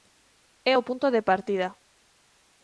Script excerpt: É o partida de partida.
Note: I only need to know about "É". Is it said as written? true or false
true